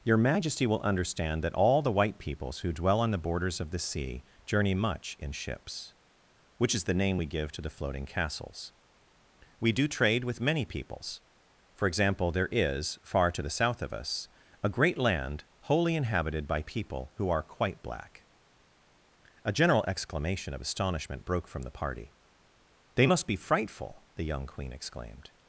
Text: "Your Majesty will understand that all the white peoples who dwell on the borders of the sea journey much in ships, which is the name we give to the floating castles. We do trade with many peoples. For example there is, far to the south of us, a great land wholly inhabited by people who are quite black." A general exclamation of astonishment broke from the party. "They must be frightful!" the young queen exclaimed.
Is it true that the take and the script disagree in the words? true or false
false